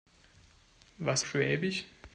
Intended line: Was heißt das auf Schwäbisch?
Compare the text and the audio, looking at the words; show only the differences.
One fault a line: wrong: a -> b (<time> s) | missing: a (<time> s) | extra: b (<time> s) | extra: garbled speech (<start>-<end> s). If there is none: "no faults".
missing: heißt das auf (1.2 s)